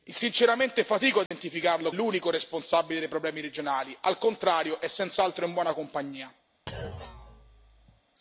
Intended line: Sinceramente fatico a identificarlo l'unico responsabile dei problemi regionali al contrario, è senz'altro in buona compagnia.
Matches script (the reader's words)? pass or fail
pass